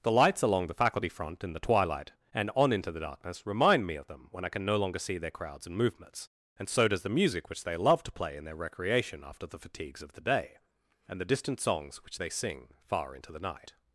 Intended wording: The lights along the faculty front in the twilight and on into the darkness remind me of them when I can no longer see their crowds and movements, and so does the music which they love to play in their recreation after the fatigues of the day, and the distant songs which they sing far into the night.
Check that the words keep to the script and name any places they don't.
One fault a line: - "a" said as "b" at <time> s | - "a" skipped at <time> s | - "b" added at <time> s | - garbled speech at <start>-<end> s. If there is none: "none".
none